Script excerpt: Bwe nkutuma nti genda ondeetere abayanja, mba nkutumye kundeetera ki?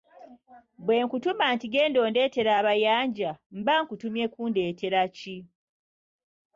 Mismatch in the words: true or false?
false